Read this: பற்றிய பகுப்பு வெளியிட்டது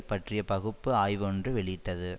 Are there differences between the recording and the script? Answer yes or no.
yes